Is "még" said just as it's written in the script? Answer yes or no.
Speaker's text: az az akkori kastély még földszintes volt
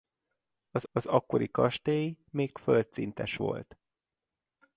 yes